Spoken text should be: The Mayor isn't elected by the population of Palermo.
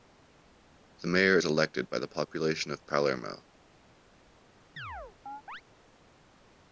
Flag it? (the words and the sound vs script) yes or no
yes